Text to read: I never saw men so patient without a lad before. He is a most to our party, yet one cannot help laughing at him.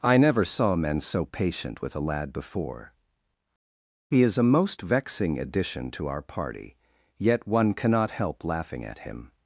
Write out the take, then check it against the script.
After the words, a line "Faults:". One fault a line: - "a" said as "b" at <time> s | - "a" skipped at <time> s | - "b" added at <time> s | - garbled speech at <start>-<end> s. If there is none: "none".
I never saw men so patient with a lad before. He is a most vexing addition to our party, yet one cannot help laughing at him.
Faults:
- "without" said as "with" at 1.8 s
- "vexing addition" added at 4.8 s